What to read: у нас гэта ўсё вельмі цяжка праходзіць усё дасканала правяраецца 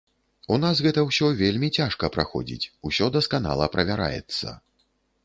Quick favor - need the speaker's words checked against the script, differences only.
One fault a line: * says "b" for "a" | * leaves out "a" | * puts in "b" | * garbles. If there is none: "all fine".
all fine